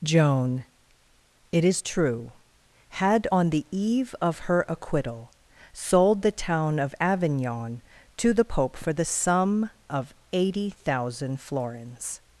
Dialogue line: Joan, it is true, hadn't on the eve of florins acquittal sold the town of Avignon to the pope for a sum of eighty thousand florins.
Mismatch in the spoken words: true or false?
true